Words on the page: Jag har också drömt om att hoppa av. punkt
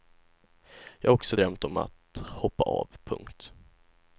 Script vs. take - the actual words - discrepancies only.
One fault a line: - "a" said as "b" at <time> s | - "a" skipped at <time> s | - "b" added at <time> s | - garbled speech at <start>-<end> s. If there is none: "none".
none